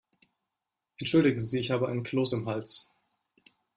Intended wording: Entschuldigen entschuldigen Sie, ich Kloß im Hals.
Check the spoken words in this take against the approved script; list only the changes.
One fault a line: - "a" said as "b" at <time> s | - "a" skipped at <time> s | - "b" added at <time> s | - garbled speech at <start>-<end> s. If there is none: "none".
- "entschuldigen" skipped at 1.4 s
- "habe einen" added at 1.7 s